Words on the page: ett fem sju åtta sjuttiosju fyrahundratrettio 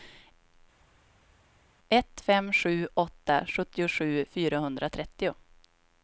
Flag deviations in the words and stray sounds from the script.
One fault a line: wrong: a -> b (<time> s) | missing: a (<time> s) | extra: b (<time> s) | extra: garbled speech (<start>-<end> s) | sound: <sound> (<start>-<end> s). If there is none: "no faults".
no faults